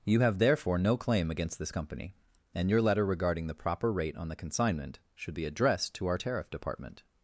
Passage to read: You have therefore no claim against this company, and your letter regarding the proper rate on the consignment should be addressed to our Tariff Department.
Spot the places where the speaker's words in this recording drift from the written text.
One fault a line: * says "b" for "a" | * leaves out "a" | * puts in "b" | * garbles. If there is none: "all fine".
all fine